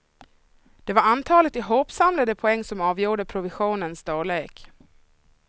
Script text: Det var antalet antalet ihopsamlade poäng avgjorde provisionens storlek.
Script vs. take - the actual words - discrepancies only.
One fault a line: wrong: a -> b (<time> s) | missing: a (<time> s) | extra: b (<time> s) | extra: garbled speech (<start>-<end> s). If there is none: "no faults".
missing: antalet (1.6 s)
extra: som (2.6 s)